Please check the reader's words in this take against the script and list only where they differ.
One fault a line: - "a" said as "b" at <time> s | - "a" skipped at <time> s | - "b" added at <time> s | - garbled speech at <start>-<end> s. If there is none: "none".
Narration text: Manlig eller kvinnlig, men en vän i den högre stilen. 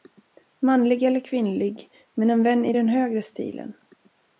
none